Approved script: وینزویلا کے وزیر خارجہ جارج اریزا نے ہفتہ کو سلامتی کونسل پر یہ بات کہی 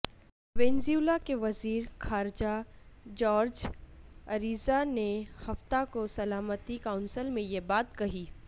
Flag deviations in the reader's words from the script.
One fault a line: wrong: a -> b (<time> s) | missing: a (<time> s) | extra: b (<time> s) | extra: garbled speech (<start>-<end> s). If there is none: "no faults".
wrong: پر -> میں (7.3 s)